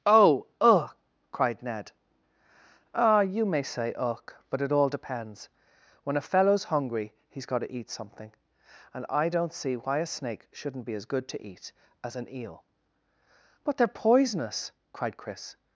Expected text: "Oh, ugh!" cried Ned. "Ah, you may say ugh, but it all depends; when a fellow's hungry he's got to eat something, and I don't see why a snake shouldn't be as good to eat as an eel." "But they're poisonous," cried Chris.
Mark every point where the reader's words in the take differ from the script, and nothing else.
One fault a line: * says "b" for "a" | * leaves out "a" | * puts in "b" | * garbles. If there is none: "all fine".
all fine